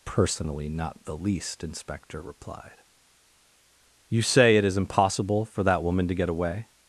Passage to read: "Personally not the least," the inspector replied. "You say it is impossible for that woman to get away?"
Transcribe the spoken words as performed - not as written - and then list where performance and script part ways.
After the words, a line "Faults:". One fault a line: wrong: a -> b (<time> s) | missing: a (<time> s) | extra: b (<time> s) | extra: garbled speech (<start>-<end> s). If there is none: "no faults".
"Personally not the least," inspector replied. "You say it is impossible for that woman to get away?"
Faults:
missing: the (1.6 s)